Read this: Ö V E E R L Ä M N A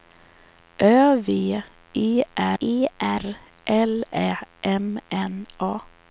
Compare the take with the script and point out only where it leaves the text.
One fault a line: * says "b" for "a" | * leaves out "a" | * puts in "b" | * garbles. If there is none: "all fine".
all fine